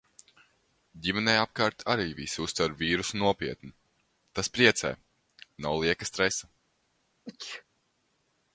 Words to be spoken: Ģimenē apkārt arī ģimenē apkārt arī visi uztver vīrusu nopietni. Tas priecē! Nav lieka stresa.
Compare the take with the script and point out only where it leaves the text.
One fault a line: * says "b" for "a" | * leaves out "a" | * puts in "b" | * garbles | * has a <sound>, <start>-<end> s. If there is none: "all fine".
* leaves out "ģimenē apkārt arī"
* has a sneeze, 7.3-7.6 s